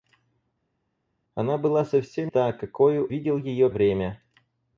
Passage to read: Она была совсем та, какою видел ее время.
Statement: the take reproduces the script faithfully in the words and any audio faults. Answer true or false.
true